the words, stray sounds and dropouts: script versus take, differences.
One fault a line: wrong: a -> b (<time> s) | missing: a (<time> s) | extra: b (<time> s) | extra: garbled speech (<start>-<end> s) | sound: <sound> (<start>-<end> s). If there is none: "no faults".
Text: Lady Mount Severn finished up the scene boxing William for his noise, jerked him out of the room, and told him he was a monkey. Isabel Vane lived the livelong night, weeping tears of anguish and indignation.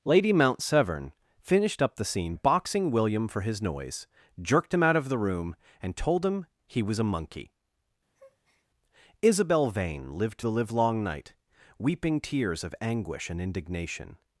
sound: breath (8.1-8.7 s)